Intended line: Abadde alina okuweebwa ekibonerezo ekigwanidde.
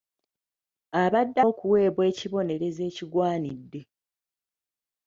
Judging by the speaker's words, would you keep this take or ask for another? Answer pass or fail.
fail